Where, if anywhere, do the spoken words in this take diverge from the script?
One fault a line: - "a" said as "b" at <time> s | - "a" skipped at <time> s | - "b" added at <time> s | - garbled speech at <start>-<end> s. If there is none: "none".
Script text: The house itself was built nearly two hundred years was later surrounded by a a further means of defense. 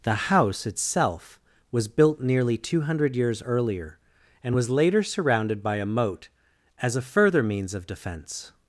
- "earlier and" added at 3.4 s
- "moat as" added at 5.8 s